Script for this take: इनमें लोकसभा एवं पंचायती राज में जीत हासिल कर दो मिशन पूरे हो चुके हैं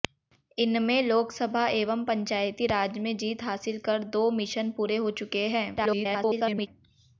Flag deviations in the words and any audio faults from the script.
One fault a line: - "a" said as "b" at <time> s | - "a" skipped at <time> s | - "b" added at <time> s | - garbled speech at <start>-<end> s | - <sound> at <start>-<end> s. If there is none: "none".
- garbled speech at 5.8-6.7 s